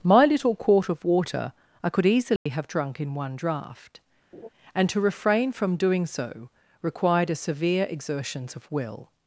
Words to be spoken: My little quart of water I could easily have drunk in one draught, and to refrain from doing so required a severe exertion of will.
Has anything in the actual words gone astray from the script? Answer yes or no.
yes